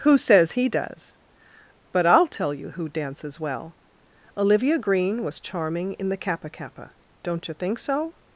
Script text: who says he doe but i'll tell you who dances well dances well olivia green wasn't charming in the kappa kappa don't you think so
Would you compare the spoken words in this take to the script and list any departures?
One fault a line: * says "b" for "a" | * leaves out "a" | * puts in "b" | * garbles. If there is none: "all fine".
* says "does" for "doe"
* leaves out "dances well"
* says "was" for "wasn't"